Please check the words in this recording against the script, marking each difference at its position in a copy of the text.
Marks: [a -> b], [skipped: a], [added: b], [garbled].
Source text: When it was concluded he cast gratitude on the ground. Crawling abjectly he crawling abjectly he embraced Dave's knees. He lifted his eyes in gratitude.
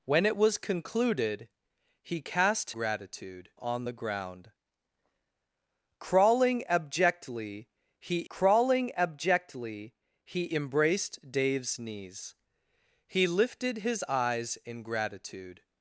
When it was concluded he cast gratitude on the ground. Crawling abjectly he crawling abjectly he embraced Dave's knees. He lifted his eyes in gratitude.